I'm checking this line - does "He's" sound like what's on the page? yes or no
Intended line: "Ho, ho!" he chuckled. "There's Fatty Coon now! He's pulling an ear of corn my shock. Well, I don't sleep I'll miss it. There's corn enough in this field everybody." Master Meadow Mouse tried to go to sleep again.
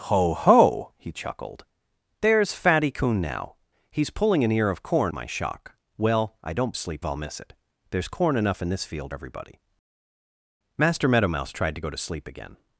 yes